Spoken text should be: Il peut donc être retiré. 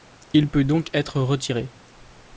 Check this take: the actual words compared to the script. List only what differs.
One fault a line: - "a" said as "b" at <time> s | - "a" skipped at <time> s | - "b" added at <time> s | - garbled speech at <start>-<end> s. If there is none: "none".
none